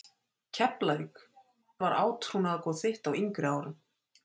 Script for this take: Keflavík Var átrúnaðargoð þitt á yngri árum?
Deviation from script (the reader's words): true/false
false